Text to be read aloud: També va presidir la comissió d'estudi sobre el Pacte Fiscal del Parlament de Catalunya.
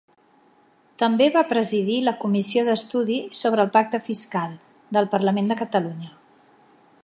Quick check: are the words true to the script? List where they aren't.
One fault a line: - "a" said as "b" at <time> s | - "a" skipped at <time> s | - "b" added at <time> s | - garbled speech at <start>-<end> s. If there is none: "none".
none